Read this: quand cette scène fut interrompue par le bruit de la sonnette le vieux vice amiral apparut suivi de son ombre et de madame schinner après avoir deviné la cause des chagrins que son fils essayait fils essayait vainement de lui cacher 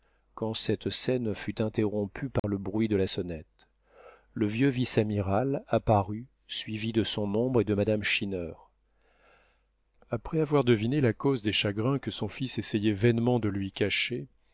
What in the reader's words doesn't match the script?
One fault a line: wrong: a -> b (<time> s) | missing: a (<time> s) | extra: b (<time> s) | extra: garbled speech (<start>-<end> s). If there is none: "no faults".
missing: fils essayait (12.9 s)